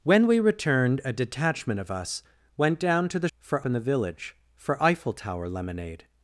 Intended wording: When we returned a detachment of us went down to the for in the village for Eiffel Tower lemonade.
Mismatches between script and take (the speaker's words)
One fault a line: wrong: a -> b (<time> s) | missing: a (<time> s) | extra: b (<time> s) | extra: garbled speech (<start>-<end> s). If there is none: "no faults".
no faults